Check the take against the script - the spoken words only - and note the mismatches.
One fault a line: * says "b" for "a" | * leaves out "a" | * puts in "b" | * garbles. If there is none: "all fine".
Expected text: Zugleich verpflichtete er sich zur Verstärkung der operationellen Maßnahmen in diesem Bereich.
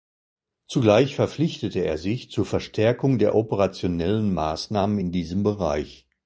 all fine